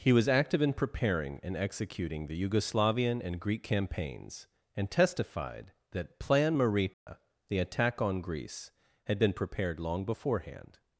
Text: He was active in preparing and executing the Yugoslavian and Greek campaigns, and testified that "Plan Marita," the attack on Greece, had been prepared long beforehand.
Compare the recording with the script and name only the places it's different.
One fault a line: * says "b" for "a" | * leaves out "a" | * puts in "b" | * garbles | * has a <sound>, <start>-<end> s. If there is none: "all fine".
* has a dropout, 6.9-7.1 s